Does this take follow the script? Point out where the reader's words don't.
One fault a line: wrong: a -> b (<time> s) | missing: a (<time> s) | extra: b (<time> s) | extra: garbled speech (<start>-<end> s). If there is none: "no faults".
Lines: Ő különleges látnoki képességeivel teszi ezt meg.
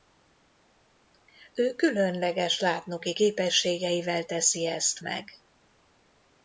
no faults